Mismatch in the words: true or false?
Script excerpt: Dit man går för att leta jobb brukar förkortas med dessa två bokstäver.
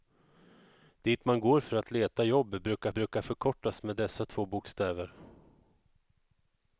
true